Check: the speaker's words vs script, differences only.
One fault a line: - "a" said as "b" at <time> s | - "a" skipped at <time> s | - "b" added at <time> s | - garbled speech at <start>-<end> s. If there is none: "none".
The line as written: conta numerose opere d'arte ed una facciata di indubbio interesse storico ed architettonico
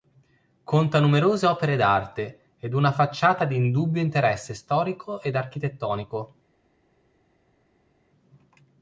none